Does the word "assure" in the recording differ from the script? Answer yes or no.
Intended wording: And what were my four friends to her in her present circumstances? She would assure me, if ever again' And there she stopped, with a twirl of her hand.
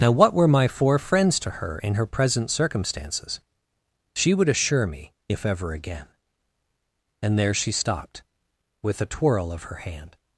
no